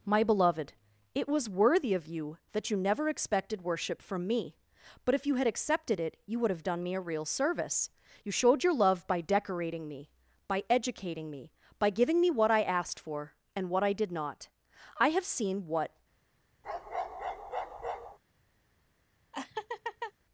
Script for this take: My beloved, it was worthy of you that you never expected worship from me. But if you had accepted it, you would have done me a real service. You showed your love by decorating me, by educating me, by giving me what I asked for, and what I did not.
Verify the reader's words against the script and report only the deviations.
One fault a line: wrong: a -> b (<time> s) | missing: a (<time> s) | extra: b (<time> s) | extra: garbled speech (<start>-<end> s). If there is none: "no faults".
extra: I have seen what (15.0 s)